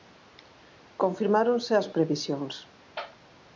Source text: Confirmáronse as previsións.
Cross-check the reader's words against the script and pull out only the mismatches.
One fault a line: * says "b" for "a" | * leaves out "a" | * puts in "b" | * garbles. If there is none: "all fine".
all fine